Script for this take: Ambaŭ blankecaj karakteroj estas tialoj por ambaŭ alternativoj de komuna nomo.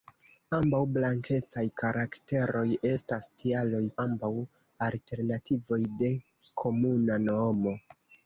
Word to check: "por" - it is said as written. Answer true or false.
false